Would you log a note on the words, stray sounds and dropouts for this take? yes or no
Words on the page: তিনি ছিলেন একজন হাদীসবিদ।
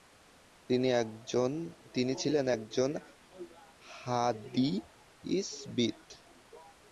no